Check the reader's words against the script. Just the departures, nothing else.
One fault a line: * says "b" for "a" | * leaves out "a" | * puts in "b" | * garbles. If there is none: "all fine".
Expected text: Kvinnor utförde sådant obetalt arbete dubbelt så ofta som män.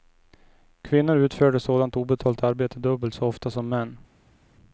all fine